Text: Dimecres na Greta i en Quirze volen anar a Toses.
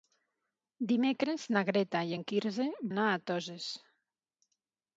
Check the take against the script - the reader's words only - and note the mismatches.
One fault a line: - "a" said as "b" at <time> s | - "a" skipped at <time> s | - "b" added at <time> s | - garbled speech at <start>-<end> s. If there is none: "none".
- "volen" skipped at 2.7 s